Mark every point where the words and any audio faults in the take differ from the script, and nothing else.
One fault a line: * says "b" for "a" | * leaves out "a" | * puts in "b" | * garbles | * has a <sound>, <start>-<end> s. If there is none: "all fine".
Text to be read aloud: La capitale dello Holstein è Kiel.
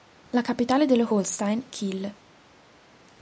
* leaves out "è"